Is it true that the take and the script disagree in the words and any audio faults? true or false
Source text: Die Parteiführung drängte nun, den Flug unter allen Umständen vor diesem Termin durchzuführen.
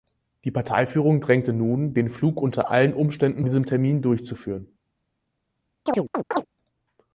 true